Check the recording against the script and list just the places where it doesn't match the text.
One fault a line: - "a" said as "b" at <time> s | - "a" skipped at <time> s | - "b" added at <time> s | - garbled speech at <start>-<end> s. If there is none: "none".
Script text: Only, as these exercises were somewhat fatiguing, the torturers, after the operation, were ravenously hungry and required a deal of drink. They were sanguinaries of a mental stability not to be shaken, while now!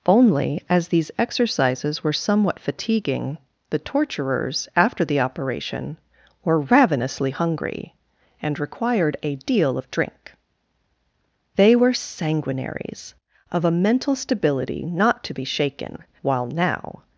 none